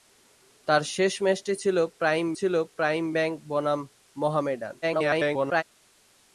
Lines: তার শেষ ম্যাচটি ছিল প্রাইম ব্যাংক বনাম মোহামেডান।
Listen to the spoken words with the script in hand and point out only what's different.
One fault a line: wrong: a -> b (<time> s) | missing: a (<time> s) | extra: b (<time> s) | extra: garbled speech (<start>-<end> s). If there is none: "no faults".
extra: ছিল প্রাইম (2.3 s)
extra: garbled speech (4.8-5.6 s)